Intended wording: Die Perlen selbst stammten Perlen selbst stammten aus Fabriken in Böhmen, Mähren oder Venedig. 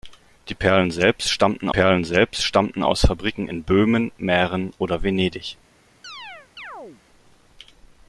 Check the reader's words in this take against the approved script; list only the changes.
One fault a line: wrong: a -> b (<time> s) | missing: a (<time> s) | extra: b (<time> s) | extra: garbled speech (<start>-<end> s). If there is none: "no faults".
no faults